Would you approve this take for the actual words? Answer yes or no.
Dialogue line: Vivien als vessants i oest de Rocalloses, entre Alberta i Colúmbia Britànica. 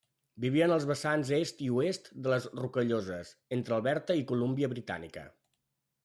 no